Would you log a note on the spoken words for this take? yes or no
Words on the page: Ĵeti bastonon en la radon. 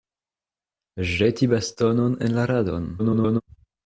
yes